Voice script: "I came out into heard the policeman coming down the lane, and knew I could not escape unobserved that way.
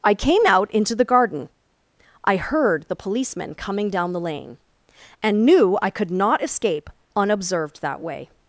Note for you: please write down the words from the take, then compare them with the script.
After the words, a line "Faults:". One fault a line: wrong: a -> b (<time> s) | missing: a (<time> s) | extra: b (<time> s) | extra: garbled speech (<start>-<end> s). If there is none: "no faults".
"I came out into the garden. I heard the policeman coming down the lane, and knew I could not escape unobserved that way.
Faults:
extra: the garden I (0.9 s)